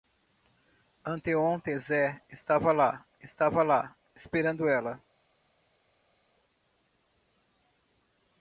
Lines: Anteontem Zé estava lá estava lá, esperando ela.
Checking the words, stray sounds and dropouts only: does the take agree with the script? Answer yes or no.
yes